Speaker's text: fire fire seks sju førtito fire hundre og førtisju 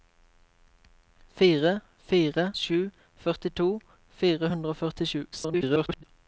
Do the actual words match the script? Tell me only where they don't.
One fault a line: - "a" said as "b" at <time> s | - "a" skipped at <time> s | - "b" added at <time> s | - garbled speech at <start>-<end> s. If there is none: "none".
- "seks" skipped at 2.5 s
- garbled speech at 5.3-6.0 s